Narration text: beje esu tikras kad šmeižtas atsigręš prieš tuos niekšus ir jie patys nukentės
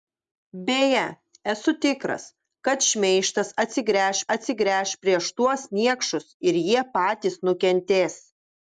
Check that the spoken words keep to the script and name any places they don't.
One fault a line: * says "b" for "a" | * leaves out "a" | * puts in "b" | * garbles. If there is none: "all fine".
* puts in "atsigręš"